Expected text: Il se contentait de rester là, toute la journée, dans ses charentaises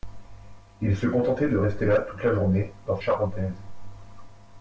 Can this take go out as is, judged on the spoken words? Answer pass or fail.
fail